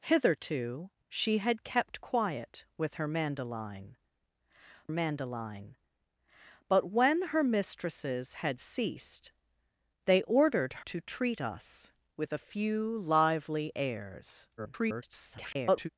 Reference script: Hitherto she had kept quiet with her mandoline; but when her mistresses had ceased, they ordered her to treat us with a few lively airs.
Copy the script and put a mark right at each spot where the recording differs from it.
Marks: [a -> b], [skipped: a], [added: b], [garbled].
Hitherto she had kept quiet with her mandoline; [added: mandoline] but when her mistresses had ceased, they ordered [skipped: her] to treat us with a few lively airs. [garbled]